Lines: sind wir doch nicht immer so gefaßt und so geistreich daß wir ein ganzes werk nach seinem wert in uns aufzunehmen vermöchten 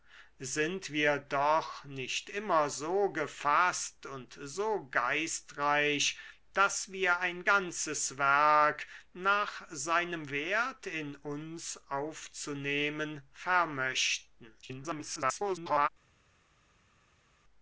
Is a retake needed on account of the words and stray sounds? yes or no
yes